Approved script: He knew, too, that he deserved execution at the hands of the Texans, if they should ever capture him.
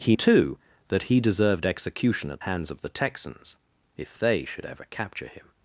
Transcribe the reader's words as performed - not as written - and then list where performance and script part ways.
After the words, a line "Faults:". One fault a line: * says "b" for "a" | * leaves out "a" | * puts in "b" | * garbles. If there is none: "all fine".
He too, that he deserved execution at hands of the Texans, if they should ever capture him.
Faults:
* leaves out "knew"
* leaves out "the"